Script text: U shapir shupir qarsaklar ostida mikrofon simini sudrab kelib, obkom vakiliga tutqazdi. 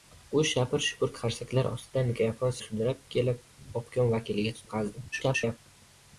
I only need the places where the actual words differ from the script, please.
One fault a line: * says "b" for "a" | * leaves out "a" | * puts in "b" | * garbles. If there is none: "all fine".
* leaves out "simini"
* garbles